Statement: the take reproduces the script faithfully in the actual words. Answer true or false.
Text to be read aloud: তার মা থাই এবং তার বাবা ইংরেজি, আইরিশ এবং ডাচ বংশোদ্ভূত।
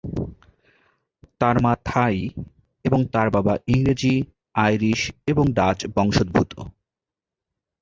true